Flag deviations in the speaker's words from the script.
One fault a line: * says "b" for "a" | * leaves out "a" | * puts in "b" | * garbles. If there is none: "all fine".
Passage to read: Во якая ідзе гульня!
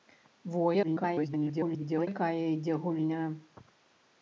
* garbles